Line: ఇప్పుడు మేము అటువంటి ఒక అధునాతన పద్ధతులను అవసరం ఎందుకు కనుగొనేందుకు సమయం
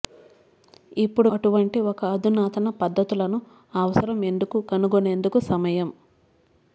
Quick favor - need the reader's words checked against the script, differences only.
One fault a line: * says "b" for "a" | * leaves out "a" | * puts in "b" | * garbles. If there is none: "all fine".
* leaves out "మేము"